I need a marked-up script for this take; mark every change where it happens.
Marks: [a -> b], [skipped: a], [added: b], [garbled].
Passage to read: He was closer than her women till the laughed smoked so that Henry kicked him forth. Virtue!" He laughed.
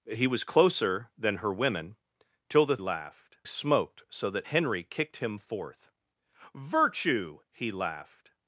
He was closer than her women till the laughed smoked so that Henry kicked him forth. Virtue!" He laughed.